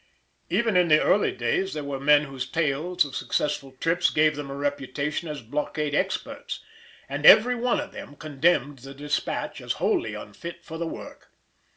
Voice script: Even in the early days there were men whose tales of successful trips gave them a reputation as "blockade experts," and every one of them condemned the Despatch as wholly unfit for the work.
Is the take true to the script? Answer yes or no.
yes